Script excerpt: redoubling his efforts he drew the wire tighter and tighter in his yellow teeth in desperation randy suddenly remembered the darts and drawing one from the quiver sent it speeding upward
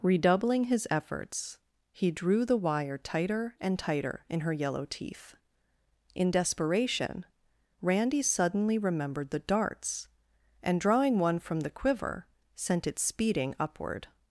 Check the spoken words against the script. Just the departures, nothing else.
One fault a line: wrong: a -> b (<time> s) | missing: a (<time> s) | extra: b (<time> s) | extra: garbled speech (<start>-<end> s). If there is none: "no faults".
wrong: his -> her (4.4 s)